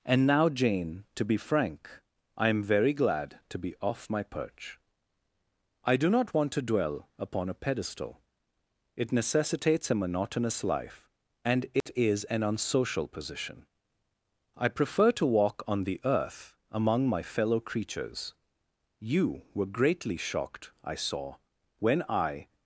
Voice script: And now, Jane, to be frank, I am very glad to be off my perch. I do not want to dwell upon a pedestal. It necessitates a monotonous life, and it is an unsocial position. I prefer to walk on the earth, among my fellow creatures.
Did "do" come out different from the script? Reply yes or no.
no